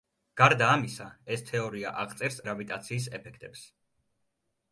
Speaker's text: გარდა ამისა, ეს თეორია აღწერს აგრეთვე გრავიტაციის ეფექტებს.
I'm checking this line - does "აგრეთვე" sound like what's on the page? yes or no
no